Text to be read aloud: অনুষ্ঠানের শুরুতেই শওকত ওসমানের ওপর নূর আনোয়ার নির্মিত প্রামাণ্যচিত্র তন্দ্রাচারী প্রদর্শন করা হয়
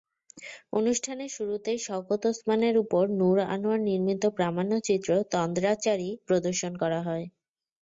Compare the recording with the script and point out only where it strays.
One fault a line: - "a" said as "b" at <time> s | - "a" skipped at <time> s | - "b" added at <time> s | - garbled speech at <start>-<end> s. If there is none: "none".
none